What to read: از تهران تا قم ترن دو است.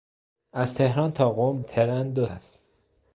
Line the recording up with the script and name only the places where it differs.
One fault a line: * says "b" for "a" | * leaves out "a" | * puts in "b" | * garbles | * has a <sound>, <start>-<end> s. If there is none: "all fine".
all fine